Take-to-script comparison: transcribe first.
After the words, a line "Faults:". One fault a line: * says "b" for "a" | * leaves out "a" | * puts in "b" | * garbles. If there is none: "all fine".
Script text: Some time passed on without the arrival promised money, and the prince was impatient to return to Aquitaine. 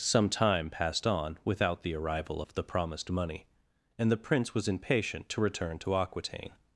Some time passed on without the arrival of the promised money, and the prince was impatient to return to Aquitaine.
Faults:
* puts in "of the"